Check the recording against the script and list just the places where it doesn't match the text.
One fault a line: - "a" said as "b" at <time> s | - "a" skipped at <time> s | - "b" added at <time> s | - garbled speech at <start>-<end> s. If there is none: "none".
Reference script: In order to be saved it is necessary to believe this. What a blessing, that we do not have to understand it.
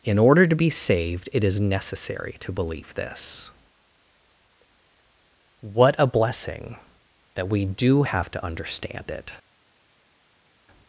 - "not" skipped at 8.0 s